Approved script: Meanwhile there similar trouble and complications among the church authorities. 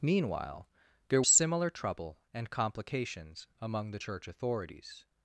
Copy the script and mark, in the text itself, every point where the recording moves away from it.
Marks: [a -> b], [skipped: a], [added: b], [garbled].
Meanwhile there similar trouble and complications among the church authorities.